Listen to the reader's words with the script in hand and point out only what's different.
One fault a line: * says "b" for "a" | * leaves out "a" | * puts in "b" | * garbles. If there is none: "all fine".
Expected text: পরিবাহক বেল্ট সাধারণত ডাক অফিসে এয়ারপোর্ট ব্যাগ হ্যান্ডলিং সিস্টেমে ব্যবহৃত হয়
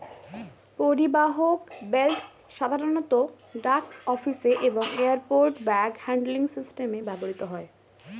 * puts in "এবং"